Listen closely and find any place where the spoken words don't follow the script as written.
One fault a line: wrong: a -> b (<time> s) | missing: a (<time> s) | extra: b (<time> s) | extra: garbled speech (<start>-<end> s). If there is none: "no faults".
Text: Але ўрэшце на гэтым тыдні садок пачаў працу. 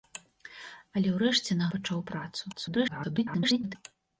missing: гэтым тыдні садок (1.7 s)
extra: garbled speech (2.5-3.8 s)